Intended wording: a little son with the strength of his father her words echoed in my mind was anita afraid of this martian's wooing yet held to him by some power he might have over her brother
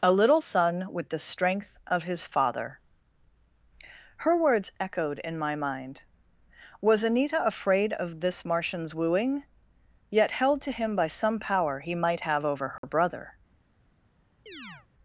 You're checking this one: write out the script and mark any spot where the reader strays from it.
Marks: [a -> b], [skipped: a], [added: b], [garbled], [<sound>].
a little son with the strength of his father her words echoed in my mind was anita afraid of this martian's wooing yet held to him by some power he might have over her [dropout] brother [chirp]